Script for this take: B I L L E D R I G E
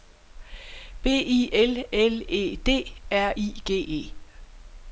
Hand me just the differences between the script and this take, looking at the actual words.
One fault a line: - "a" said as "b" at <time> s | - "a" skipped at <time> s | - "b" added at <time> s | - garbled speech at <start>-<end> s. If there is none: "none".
none